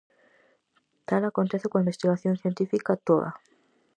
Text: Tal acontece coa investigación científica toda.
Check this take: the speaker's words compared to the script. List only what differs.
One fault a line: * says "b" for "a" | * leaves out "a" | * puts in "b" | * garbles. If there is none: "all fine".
all fine